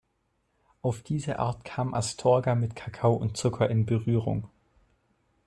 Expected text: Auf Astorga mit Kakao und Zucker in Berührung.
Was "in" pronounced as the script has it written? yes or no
yes